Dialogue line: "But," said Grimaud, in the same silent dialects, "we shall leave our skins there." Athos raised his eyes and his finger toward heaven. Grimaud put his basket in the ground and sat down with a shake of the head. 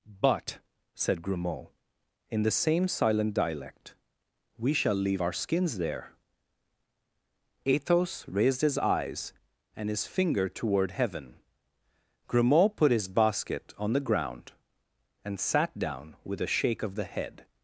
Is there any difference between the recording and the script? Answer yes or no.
yes